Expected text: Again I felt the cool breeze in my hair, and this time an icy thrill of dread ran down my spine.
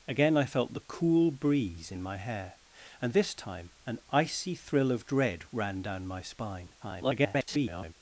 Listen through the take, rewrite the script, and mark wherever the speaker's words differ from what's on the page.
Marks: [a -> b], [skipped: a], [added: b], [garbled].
Again I felt the cool breeze in my hair, and this time an icy thrill of dread ran down my spine. [garbled]